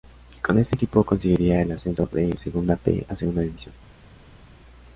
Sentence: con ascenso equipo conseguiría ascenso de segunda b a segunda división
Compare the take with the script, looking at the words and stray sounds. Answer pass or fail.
fail